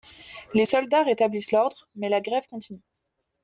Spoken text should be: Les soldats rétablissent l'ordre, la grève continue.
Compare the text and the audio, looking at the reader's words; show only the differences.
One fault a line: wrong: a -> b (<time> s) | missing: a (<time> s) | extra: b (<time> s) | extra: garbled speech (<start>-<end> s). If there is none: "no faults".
extra: mais (1.9 s)